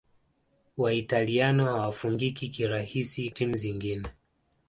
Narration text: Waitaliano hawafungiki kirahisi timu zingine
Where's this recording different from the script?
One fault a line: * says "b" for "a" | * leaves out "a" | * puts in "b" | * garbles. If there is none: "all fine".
all fine